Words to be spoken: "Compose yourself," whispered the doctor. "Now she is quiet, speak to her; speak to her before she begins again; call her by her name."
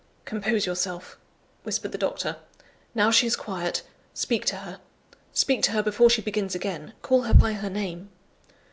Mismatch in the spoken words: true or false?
false